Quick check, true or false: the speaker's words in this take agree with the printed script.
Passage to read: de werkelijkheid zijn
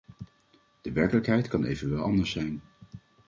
false